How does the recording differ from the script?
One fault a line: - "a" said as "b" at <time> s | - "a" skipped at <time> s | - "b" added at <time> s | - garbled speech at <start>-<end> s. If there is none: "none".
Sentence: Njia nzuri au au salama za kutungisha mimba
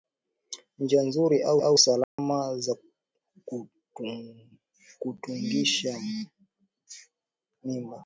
none